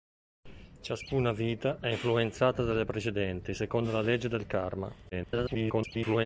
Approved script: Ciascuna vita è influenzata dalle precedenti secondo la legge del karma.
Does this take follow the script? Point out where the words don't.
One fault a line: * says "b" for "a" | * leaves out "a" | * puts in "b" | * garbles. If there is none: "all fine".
* garbles